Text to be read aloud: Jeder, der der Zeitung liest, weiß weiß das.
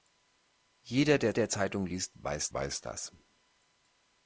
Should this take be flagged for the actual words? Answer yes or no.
no